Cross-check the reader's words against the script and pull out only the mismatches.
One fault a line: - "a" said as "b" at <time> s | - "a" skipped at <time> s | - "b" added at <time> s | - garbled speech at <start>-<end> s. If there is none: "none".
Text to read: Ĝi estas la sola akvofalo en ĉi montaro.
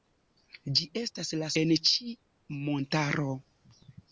- "sola akvofalo" skipped at 1.5 s